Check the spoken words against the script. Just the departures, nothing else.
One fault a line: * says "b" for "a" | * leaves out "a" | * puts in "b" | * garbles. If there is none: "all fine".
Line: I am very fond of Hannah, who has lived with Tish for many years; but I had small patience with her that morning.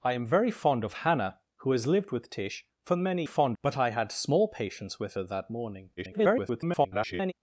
* says "fond" for "years"
* garbles